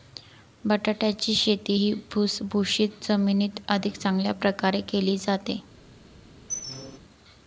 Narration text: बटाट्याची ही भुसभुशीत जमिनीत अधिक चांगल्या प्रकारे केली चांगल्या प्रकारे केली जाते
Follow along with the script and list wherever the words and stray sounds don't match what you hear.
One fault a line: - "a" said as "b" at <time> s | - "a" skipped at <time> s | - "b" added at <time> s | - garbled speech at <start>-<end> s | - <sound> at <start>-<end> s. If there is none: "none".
- "शेती" added at 1.4 s
- "चांगल्या प्रकारे केली" skipped at 5.2 s
- squeak at 6.5-7.0 s